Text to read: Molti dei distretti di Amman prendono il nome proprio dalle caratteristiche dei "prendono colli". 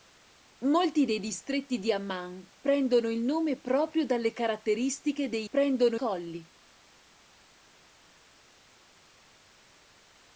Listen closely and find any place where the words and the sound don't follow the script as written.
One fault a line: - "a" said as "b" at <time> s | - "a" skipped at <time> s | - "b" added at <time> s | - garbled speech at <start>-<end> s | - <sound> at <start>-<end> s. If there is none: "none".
none